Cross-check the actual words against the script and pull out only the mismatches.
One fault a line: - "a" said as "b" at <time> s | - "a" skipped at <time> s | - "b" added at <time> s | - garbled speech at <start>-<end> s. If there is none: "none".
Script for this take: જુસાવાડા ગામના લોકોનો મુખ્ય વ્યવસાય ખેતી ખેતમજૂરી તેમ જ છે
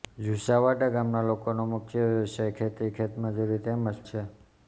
none